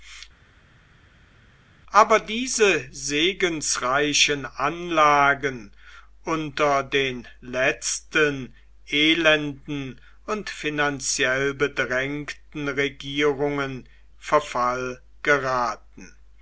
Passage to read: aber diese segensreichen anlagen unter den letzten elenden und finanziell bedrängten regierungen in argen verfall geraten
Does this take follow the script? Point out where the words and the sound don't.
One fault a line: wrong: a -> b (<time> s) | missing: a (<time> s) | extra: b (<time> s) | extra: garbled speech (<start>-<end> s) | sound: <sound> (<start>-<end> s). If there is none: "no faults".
missing: in argen (13.9 s)